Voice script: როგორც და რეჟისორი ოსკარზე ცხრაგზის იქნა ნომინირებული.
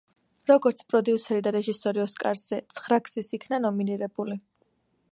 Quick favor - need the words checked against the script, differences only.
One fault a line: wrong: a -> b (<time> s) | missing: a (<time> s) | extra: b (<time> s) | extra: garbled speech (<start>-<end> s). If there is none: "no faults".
extra: პროდიუსერი (0.9 s)